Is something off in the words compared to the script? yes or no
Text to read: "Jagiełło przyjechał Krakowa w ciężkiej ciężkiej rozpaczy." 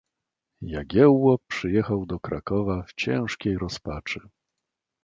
yes